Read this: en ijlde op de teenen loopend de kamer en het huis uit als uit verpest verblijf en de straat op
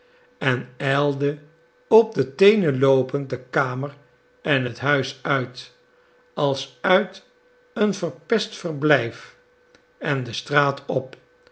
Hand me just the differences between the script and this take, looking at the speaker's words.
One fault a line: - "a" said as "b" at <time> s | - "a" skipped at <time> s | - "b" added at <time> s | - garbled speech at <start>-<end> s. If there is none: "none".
- "een" added at 7.7 s